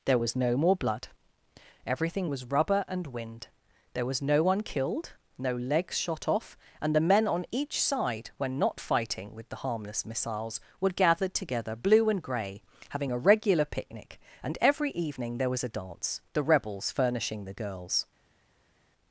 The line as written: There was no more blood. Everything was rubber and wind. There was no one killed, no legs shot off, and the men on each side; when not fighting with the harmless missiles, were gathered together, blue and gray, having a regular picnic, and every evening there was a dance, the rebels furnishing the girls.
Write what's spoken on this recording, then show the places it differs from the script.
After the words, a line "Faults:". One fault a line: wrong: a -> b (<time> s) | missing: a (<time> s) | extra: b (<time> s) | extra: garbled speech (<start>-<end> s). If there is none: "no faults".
There was no more blood. Everything was rubber and wind. There was no one killed, no legs shot off, and the men on each side; when not fighting with the harmless missiles, were gathered together, blue and gray, having a regular picnic, and every evening there was a dance, the rebels furnishing the girls.
Faults:
no faults